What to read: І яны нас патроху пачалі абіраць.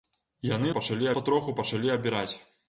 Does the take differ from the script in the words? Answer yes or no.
yes